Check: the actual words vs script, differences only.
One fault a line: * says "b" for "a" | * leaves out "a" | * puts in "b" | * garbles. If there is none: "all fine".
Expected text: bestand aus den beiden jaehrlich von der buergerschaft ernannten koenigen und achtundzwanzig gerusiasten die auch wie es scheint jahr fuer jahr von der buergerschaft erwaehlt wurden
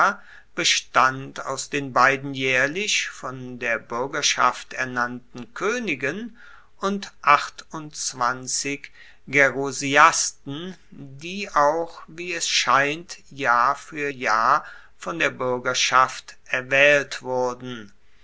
all fine